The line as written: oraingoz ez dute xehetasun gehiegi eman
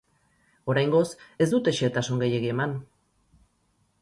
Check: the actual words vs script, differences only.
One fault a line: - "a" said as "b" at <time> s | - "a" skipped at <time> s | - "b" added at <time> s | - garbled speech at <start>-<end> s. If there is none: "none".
none